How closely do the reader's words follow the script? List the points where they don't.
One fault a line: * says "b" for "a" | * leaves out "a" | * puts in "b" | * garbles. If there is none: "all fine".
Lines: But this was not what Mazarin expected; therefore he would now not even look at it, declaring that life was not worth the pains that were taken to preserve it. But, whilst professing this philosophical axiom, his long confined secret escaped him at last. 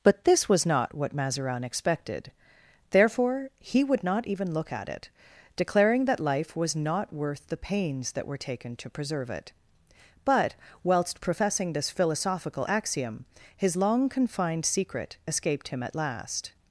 * leaves out "now"